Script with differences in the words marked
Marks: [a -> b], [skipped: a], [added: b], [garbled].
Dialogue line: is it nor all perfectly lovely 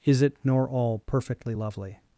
is it nor all perfectly lovely